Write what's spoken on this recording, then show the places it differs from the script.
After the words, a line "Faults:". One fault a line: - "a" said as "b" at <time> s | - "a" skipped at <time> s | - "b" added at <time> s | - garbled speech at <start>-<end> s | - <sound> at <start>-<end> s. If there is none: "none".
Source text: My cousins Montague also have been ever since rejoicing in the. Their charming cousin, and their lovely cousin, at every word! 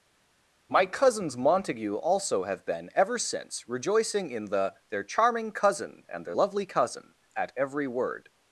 My cousins Montague also have been ever since rejoicing in the. Their charming cousin, and their lovely cousin, at every word!
Faults:
none